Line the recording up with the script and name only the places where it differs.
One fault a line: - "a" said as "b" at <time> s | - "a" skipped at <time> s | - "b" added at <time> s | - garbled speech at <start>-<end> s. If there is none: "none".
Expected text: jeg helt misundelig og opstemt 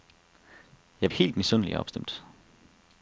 none